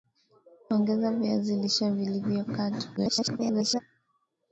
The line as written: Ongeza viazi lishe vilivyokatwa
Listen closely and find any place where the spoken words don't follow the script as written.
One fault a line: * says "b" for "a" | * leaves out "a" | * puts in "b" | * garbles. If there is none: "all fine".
* garbles